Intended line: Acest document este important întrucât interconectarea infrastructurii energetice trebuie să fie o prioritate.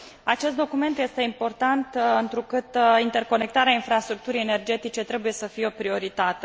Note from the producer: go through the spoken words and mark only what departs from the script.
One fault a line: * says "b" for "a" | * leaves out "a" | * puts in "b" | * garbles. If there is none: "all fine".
all fine